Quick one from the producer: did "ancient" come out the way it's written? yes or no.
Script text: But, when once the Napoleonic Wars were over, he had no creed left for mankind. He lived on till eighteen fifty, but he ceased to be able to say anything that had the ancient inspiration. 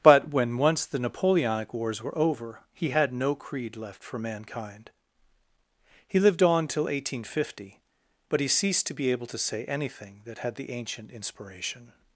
yes